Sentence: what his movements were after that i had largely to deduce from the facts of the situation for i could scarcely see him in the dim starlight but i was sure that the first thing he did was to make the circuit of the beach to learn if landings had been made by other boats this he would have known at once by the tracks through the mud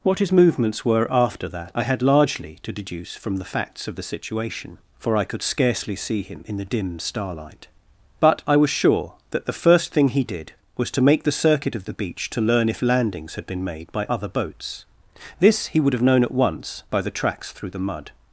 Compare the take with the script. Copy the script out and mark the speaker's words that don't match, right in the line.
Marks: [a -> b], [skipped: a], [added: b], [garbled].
what his movements were after that i had largely to deduce from the facts of the situation for i could scarcely see him in the dim starlight but i was sure that the first thing he did was to make the circuit of the beach to learn if landings had been made by other boats this he would have known at once by the tracks through the mud